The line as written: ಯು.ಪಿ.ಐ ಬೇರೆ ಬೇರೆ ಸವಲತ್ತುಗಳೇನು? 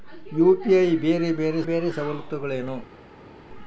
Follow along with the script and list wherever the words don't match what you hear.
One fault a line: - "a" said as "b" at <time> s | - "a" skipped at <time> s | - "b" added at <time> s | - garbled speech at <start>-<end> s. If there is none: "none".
- "ಬೇರೆ" added at 1.6 s